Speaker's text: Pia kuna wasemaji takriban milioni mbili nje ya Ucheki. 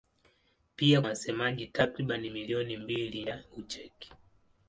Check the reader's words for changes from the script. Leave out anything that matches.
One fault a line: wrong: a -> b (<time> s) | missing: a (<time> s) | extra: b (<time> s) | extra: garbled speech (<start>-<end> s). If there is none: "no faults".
missing: kuna (1.0 s)
missing: nje (3.2 s)